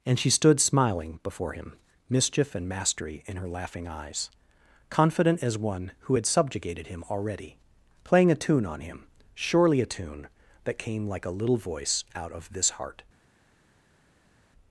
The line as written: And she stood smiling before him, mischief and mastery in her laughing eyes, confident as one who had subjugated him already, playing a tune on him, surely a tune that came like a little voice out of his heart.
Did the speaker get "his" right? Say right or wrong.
wrong